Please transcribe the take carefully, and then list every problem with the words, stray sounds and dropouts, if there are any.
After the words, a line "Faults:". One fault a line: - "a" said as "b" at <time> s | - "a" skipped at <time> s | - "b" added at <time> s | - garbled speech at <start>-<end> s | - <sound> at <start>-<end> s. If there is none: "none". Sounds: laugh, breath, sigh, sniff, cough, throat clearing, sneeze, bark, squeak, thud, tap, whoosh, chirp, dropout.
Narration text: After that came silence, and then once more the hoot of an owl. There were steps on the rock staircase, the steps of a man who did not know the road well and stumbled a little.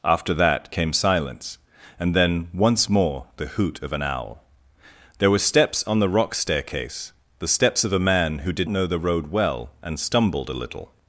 After that came silence, and then once more the hoot of an owl. There were steps on the rock staircase, the steps of a man who did know the road well and stumbled a little.
Faults:
- "not" skipped at 8.7 s